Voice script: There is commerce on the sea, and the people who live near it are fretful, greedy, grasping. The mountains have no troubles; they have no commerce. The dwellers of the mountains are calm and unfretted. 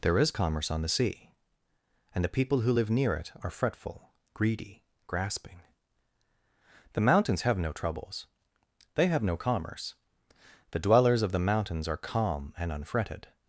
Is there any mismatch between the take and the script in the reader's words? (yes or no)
no